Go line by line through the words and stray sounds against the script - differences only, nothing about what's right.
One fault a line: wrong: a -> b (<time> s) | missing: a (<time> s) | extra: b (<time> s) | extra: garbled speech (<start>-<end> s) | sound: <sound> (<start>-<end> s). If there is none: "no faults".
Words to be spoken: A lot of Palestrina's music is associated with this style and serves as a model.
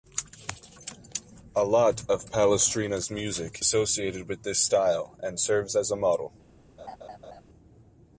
missing: is (3.6 s)
sound: laugh (6.8-7.4 s)